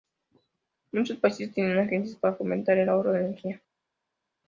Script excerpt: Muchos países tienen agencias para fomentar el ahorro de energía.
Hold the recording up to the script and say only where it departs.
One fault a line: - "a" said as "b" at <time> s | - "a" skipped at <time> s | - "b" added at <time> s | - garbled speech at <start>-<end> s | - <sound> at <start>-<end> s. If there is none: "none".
none